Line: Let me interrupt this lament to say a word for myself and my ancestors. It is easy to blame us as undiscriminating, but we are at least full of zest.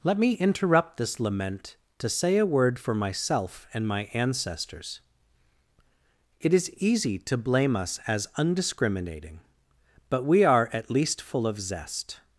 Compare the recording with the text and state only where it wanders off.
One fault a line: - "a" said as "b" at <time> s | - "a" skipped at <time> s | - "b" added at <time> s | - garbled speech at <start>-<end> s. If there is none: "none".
none